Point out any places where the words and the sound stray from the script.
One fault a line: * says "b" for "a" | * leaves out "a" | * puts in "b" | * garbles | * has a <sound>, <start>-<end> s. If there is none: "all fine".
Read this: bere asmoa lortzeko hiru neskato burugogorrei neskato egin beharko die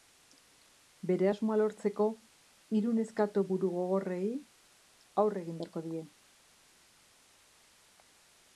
* says "aurre" for "neskato"